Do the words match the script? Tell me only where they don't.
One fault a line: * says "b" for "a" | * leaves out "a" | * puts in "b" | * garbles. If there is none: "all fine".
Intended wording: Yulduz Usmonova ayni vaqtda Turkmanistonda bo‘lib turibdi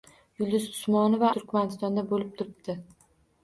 * leaves out "ayni vaqtda"